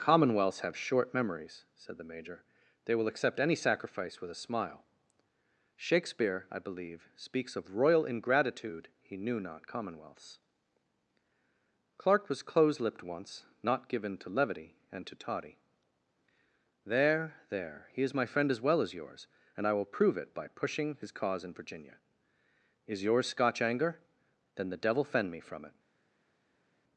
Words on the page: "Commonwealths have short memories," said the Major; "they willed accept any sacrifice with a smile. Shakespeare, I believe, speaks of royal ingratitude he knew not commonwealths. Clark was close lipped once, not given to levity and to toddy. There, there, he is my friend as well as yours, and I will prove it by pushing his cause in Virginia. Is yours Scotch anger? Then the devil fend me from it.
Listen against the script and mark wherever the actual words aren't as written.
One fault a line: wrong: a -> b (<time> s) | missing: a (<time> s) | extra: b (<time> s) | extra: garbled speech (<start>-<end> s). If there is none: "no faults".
wrong: willed -> will (3.0 s)